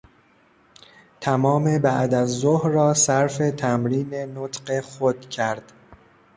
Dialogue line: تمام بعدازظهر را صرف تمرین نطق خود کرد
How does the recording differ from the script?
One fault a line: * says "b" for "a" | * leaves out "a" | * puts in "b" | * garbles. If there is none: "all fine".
all fine